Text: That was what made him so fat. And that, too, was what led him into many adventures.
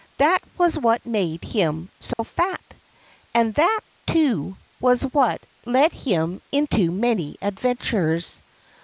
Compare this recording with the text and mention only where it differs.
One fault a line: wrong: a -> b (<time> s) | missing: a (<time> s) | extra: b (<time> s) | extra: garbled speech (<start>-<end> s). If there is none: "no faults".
no faults